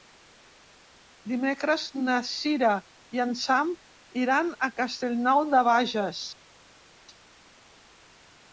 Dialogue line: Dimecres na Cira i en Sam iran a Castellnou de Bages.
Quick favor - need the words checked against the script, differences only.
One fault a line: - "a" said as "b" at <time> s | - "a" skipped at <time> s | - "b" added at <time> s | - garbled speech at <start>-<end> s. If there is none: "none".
none